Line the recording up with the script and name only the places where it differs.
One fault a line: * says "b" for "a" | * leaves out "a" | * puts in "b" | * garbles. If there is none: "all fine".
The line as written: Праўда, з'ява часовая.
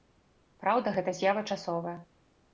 * puts in "гэта"